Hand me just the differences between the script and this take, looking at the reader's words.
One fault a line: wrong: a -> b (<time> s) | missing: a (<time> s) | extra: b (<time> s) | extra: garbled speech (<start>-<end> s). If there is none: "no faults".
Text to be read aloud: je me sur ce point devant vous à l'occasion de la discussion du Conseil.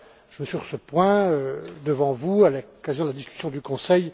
no faults